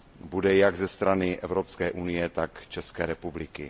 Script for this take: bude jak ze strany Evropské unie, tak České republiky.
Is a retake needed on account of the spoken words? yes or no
no